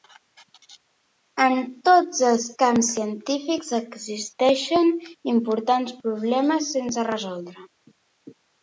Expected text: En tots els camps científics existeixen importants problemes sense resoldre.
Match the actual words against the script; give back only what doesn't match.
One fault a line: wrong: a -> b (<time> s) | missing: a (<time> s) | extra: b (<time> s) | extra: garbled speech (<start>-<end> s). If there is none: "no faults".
no faults